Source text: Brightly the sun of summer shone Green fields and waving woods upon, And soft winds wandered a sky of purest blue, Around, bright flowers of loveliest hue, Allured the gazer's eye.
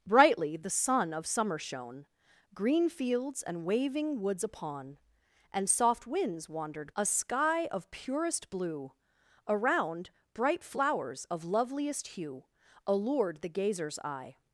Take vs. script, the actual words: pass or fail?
pass